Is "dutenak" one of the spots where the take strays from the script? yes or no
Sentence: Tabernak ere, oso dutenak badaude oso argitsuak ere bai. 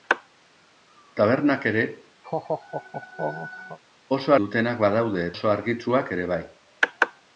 no